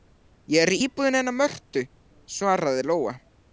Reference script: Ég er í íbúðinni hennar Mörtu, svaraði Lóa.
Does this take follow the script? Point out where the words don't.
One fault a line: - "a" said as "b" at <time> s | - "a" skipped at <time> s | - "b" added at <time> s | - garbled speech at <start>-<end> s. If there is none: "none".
none